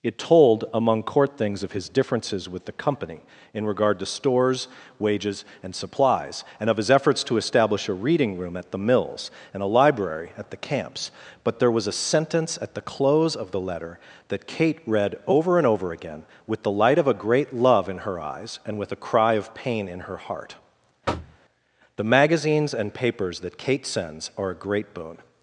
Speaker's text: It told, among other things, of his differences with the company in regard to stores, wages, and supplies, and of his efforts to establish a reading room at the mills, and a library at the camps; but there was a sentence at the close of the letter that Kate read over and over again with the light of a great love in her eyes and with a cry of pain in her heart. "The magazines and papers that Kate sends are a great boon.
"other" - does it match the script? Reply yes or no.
no